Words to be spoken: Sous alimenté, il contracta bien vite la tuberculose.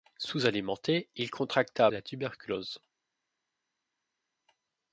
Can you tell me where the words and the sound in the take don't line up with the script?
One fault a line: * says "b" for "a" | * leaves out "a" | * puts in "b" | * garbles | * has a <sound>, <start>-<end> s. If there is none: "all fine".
* leaves out "bien vite"